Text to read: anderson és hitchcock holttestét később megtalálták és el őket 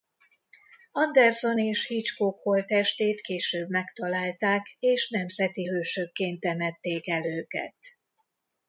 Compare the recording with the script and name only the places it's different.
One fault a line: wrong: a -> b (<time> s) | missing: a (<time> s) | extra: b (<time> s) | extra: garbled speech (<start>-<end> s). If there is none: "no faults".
extra: nemzeti hősökként temették (5.1 s)